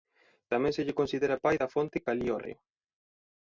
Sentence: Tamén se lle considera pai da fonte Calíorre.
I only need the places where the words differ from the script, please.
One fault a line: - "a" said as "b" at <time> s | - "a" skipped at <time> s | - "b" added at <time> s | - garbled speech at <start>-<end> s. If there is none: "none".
none